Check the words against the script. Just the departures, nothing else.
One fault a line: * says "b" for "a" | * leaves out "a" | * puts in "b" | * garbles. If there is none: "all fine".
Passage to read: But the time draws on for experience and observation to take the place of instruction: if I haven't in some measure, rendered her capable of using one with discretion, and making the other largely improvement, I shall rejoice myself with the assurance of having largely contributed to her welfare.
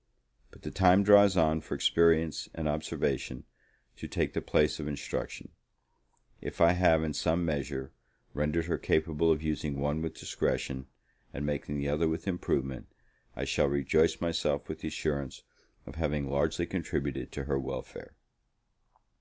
* says "have" for "haven't"
* says "with" for "largely"